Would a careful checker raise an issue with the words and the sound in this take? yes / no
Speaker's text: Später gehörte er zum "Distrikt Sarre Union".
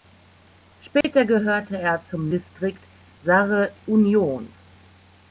yes